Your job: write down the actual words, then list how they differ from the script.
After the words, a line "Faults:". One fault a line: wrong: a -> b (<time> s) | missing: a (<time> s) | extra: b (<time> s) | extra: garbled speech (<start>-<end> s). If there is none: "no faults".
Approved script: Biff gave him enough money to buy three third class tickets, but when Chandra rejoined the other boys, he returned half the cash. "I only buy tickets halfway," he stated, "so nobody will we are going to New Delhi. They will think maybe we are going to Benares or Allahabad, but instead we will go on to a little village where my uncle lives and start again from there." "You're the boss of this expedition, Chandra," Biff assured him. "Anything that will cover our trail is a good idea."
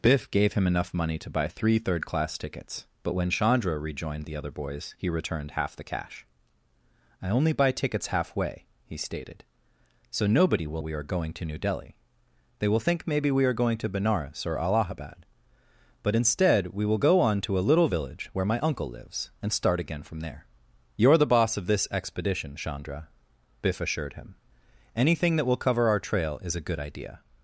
Biff gave him enough money to buy three third class tickets, but when Chandra rejoined the other boys, he returned half the cash. "I only buy tickets halfway," he stated, "so nobody will we are going to New Delhi. They will think maybe we are going to Benares or Allahabad, but instead we will go on to a little village where my uncle lives and start again from there." "You're the boss of this expedition, Chandra," Biff assured him. "Anything that will cover our trail is a good idea."
Faults:
no faults